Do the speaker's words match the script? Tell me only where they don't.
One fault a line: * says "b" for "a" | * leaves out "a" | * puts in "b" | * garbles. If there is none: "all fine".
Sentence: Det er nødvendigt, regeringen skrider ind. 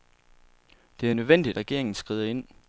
all fine